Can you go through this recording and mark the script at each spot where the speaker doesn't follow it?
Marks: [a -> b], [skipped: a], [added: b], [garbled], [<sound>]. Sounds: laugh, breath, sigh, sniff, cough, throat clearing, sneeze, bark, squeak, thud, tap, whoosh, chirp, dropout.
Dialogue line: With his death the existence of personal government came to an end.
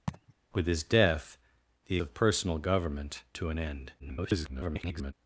[laugh] With his death the [skipped: existence] of personal government [skipped: came] to an end. [garbled]